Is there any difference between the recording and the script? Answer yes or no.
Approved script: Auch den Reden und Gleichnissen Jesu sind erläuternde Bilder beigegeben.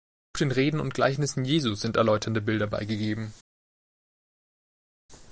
no